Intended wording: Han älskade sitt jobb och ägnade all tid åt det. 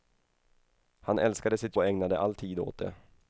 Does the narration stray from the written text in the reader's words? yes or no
yes